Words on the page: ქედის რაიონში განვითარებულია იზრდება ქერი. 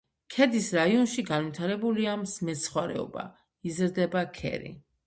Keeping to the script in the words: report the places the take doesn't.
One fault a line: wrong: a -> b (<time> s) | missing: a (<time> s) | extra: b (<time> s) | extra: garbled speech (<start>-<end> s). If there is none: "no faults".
extra: მეცხვარეობა (2.5 s)